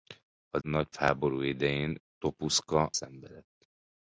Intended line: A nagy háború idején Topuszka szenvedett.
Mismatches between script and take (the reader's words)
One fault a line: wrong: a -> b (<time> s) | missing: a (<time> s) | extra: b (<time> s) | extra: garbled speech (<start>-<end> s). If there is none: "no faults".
no faults